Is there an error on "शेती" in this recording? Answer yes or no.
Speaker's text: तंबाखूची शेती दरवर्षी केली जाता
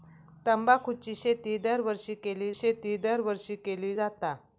no